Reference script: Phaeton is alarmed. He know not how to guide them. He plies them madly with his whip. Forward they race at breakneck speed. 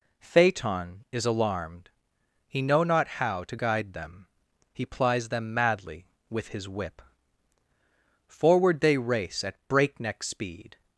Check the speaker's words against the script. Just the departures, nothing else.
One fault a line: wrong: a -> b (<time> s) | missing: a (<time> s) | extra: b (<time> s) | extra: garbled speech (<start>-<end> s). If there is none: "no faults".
no faults